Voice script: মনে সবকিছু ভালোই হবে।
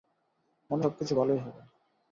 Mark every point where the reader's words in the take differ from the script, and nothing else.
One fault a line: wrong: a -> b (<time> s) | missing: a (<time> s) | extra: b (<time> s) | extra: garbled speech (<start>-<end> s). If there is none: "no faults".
no faults